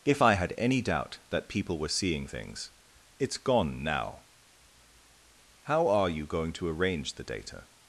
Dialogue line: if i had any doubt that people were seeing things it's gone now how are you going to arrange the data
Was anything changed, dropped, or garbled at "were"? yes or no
no